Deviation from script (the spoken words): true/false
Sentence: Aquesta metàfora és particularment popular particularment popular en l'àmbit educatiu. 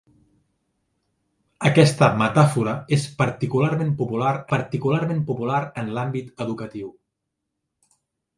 false